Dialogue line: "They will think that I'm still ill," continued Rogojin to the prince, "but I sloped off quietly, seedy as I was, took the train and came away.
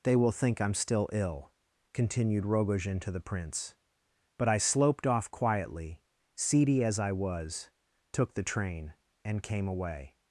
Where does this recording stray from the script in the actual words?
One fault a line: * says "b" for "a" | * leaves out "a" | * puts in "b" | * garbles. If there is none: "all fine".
* leaves out "that"